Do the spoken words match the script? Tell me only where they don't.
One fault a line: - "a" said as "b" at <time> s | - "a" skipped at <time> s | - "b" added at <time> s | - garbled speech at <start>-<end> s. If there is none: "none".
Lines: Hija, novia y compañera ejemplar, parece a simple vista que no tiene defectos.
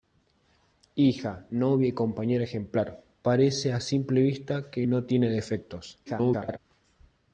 - garbled speech at 6.1-6.6 s